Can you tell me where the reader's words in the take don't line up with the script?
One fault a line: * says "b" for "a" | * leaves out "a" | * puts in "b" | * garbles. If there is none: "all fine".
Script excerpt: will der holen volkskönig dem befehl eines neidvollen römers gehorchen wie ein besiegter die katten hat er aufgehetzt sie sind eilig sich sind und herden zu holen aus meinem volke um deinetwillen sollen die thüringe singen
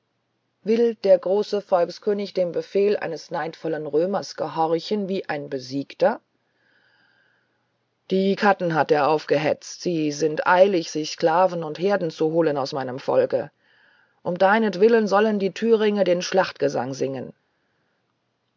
* says "große" for "holen"
* says "sklaven" for "sind"
* puts in "den schlachtgesang"